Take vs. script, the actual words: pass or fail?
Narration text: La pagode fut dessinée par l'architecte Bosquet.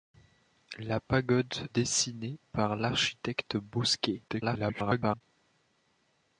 fail